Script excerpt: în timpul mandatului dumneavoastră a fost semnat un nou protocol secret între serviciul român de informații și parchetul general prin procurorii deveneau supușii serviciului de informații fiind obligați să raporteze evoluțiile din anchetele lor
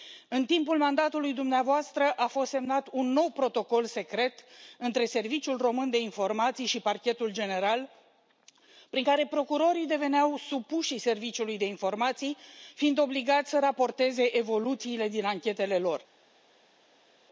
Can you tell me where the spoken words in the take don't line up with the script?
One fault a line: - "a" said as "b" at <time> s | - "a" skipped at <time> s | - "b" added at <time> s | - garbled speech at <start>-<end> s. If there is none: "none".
- "care" added at 9.0 s